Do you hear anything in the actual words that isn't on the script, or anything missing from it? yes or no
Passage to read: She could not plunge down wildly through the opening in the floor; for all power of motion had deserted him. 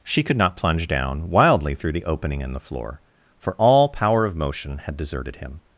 no